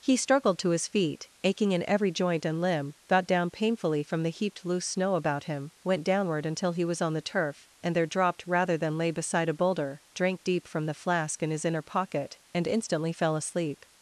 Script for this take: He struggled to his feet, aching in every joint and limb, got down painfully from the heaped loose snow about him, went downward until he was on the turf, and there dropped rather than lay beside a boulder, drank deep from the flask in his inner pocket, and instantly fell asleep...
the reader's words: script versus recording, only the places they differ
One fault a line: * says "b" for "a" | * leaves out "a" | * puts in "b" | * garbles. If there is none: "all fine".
all fine